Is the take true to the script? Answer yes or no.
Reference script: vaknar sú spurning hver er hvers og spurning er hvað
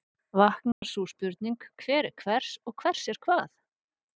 no